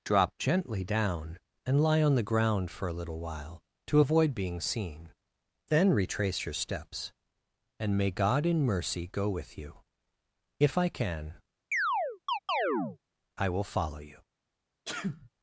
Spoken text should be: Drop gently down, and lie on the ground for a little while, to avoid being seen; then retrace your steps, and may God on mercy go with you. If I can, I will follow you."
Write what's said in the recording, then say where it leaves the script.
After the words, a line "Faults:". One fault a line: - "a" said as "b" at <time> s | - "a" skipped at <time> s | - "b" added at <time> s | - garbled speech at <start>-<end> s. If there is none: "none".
Drop gently down, and lie on the ground for a little while, to avoid being seen; then retrace your steps, and may God in mercy go with you. If I can, I will follow you."
Faults:
- "on" said as "in" at 8.5 s